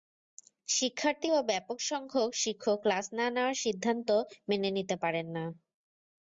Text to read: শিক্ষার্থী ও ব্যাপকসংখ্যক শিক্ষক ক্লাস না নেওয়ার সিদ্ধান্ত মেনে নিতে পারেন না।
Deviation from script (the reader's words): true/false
false